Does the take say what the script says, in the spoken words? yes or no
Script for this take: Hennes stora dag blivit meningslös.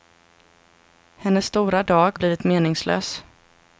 yes